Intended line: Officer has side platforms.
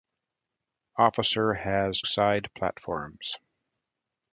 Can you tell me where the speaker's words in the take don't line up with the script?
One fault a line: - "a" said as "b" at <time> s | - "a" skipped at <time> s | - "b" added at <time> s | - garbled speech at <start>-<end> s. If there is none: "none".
none